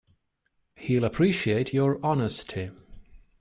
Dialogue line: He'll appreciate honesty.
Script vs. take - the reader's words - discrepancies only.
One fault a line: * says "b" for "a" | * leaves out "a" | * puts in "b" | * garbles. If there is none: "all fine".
* puts in "your"